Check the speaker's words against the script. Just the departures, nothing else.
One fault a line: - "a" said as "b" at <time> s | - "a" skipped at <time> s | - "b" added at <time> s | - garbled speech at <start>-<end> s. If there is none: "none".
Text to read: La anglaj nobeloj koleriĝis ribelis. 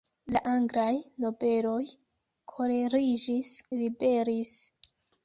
none